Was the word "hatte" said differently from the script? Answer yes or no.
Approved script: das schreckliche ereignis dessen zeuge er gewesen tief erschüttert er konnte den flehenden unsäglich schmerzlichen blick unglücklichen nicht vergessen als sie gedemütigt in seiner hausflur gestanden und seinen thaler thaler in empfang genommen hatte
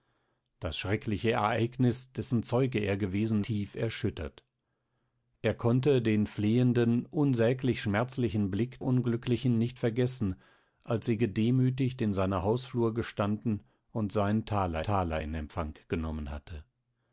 no